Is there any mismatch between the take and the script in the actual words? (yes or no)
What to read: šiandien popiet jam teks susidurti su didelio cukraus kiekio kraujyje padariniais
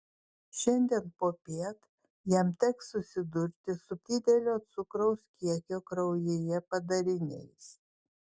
no